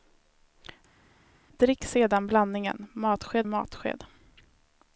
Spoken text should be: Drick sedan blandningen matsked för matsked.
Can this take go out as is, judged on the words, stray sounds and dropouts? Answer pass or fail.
fail